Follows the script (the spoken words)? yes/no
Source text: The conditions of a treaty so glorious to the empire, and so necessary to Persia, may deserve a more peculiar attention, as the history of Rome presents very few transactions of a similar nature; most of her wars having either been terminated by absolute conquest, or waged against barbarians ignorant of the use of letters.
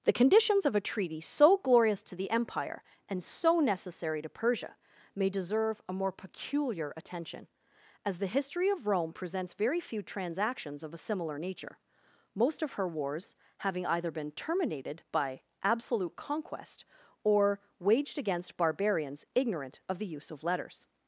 yes